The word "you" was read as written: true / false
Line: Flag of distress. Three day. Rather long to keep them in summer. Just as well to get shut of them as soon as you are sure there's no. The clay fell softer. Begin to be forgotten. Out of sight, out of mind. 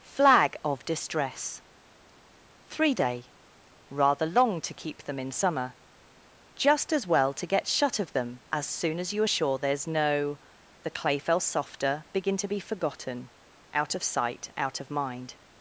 true